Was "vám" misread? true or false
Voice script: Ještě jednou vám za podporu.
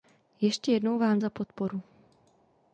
false